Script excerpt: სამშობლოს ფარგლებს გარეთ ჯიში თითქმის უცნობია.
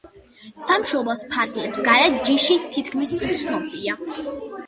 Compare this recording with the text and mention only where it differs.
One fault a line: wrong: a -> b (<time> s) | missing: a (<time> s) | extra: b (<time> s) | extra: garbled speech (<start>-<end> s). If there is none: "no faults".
no faults